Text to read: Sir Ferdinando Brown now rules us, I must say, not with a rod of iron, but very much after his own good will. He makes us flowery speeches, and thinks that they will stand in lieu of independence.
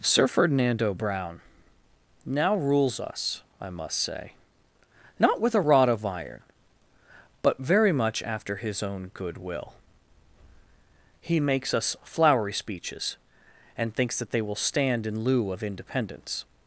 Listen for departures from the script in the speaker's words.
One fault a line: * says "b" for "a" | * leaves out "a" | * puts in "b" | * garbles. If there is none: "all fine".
all fine